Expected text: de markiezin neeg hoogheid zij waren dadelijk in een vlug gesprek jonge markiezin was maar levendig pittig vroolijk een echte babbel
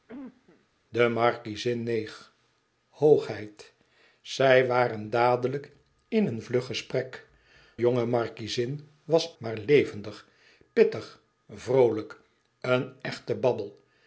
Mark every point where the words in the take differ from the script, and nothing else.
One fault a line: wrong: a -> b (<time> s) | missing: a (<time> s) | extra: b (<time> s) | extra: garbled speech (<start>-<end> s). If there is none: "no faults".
no faults